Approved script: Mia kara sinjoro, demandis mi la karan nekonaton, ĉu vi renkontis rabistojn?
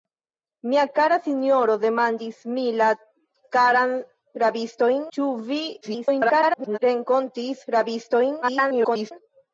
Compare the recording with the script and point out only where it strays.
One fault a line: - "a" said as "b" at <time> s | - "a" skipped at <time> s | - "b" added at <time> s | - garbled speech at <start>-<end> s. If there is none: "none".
- "nekonaton" said as "rabistojn" at 4.4 s
- garbled speech at 5.8-6.8 s
- garbled speech at 8.4-9.1 s